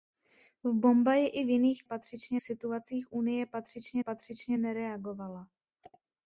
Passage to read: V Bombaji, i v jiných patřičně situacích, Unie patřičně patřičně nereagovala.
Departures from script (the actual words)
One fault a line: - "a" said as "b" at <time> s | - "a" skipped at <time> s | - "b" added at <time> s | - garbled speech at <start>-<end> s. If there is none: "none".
none